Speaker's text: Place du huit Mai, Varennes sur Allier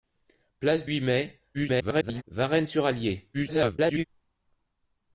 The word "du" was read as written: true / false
false